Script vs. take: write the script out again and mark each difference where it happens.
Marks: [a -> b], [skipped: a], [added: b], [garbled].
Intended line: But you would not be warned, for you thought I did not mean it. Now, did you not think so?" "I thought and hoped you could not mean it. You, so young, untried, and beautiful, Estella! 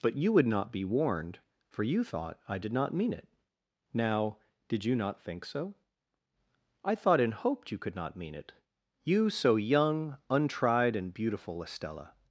But you would not be warned, for you thought I did not mean it. Now, did you not think so?" "I thought and hoped you could not mean it. You, so young, untried, and beautiful, Estella!